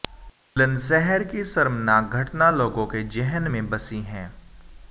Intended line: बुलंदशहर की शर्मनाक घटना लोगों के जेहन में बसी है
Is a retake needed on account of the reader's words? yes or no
no